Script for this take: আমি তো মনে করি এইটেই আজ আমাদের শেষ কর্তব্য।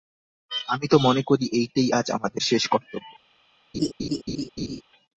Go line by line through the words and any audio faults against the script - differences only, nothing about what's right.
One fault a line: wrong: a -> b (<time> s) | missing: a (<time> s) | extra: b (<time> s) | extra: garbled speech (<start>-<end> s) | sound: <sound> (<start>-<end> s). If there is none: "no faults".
sound: laugh (3.7-4.8 s)